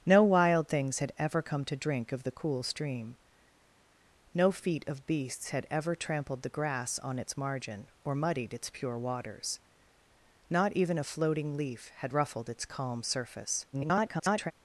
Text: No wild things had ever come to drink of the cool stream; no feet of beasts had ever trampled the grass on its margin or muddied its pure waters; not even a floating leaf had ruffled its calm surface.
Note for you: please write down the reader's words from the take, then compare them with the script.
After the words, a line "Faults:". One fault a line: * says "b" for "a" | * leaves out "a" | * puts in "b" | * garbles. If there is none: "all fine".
No wild things had ever come to drink of the cool stream; no feet of beasts had ever trampled the grass on its margin or muddied its pure waters; not even a floating leaf had ruffled its calm surface. [garbled]
Faults:
* garbles